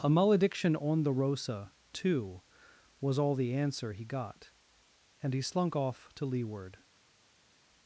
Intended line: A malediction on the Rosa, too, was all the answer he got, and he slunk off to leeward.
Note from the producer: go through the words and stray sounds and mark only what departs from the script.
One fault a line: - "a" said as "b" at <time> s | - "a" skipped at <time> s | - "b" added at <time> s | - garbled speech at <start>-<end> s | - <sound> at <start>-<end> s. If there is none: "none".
none